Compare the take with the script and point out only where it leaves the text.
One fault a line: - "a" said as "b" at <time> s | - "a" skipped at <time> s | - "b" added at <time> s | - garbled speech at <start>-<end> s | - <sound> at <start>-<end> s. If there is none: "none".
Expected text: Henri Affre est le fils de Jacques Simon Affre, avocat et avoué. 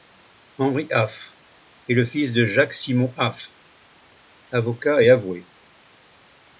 none